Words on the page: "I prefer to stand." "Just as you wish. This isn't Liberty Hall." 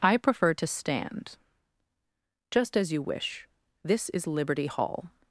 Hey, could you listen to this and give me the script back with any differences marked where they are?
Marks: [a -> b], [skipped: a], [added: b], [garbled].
"I prefer to stand." "Just as you wish. This [isn't -> is] Liberty Hall."